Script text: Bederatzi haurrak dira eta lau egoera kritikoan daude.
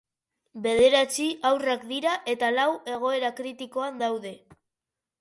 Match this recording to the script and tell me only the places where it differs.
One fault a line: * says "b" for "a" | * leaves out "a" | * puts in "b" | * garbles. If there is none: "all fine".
all fine